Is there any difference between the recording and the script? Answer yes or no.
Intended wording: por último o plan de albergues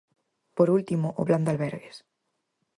no